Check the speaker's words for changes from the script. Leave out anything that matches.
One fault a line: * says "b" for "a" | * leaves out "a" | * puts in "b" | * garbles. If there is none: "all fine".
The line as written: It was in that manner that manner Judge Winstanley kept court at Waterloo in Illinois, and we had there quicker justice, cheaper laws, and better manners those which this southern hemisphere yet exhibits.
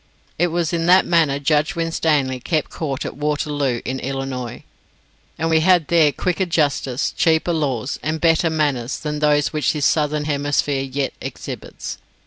* leaves out "that manner"
* puts in "than"